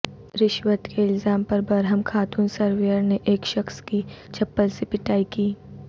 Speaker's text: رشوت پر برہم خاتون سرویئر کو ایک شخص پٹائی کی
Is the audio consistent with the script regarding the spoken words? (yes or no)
no